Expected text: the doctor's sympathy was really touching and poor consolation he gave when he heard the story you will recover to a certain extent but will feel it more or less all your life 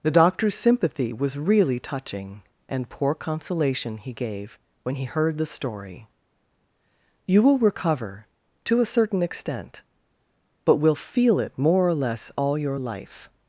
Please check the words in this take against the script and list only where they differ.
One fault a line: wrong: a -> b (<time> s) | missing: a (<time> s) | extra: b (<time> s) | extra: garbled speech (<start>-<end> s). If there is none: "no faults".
no faults